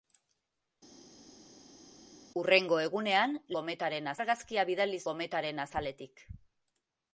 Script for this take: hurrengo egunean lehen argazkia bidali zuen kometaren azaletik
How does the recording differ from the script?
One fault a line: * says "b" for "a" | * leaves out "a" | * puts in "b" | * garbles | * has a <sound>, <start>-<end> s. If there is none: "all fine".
* says "kometaren" for "lehen"
* leaves out "zuen"